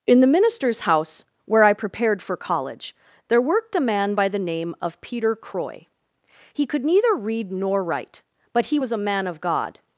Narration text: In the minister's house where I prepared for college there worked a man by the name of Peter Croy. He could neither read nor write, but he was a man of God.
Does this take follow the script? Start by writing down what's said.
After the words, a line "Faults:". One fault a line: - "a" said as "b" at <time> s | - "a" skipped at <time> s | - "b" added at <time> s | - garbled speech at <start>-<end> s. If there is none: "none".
In the minister's house where I prepared for college there worked a man by the name of Peter Croy. He could neither read nor write, but he was a man of God.
Faults:
none